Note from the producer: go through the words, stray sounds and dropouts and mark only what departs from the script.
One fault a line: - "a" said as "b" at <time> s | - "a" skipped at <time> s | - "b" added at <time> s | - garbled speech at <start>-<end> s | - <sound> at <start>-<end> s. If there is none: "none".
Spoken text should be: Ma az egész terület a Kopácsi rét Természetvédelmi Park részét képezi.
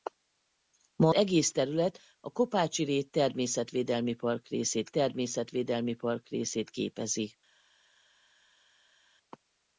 - "az" skipped at 1.1 s
- "Természetvédelmi Park részét" added at 4.9 s